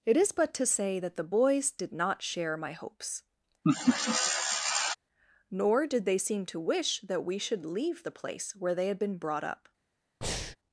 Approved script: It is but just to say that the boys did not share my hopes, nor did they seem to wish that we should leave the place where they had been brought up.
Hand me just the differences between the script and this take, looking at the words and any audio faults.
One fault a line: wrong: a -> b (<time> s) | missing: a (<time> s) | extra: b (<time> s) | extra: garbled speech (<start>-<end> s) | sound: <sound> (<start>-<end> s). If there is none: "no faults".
missing: just (0.5 s)
sound: laugh (3.6-5.0 s)
sound: breath (10.2-10.6 s)